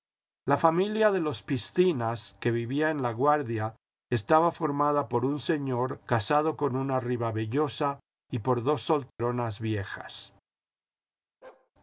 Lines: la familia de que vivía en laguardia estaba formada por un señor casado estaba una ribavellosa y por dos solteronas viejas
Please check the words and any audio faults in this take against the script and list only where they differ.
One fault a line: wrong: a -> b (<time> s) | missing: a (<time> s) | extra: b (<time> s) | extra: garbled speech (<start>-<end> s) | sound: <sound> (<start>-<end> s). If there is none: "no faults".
extra: los piscinas (1.2 s)
wrong: estaba -> con (6.6 s)
sound: dropout (9.1-9.2 s)
sound: bark (11.4-11.7 s)